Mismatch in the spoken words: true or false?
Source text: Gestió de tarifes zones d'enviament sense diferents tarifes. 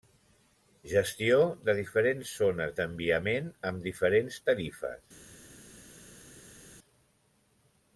true